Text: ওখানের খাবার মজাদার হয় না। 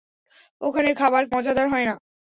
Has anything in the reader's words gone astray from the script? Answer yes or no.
no